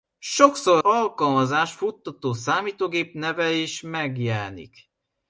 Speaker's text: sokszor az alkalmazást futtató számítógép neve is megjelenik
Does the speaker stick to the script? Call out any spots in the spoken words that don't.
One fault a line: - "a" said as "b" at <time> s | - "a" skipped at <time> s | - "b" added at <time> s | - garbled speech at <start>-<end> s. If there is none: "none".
- "az" skipped at 0.8 s